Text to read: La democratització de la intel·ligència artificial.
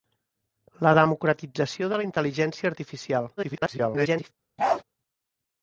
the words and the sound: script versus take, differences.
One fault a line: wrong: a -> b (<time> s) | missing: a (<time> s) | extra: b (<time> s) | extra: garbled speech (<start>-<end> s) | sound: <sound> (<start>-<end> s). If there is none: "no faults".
extra: garbled speech (3.4-4.3 s)
sound: bark (4.6-4.8 s)